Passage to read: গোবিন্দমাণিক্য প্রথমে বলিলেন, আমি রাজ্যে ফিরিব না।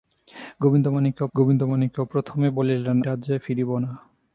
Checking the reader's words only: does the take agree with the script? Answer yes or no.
no